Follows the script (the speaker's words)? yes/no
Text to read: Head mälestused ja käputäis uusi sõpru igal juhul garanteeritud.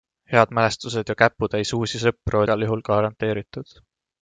yes